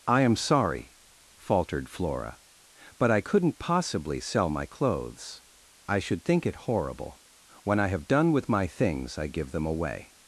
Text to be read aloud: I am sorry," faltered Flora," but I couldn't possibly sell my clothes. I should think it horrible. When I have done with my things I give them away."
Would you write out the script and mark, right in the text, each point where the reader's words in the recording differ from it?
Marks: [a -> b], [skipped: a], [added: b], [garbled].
I am sorry," faltered Flora," but I couldn't possibly sell my clothes. I should think it horrible. When I have done with my things I give them away."